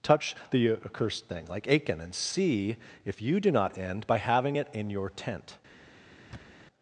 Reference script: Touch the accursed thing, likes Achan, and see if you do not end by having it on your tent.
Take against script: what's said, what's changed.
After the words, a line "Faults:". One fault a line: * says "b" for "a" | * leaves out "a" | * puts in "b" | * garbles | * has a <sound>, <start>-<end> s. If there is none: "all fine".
Touch the accursed thing, like Achan, and see if you do not end by having it in your tent.
Faults:
* says "like" for "likes"
* says "in" for "on"
* has a thud, 6.3-6.7 s